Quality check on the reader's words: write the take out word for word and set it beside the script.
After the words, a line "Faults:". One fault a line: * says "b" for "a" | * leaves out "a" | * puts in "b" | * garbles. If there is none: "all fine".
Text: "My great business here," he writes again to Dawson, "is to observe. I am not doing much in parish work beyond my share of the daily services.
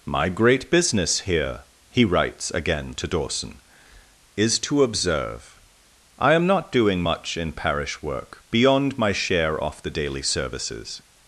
"My great business here," he writes again to Dawson, "is to observe. I am not doing much in parish work beyond my share off the daily services.
Faults:
* says "off" for "of"